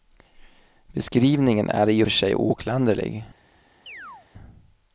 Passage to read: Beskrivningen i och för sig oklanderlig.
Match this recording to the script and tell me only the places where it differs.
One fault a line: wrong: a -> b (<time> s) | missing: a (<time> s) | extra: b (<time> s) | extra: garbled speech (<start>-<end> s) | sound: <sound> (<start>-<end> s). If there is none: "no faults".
extra: är (1.7 s)
sound: chirp (3.9-4.3 s)